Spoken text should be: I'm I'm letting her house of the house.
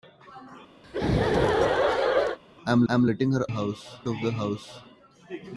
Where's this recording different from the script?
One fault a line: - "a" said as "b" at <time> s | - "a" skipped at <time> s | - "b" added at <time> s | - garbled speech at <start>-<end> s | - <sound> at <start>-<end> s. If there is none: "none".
- laugh at 0.8-2.4 s